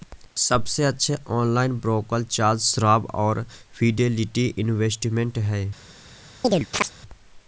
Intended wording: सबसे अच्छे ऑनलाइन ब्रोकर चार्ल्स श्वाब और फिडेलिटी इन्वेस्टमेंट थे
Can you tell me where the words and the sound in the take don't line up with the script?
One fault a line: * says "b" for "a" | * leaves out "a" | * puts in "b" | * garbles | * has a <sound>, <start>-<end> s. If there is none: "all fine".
* says "हैं" for "थे"
* has a chirp, 6.4-6.9 s